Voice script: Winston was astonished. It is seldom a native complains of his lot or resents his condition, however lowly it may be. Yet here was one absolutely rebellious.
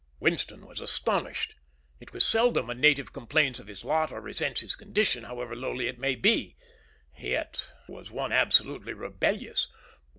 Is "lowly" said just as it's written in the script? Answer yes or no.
yes